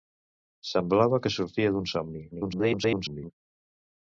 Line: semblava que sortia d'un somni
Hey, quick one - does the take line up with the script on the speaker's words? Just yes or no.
no